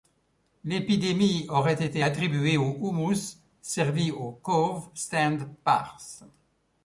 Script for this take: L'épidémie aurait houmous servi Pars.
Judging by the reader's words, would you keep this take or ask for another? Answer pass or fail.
fail